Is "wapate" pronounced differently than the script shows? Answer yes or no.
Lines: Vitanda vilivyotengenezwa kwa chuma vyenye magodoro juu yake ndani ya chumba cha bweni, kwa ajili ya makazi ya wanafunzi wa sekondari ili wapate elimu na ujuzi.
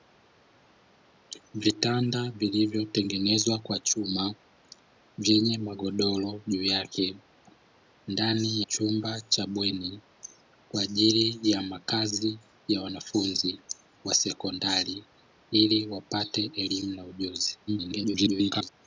no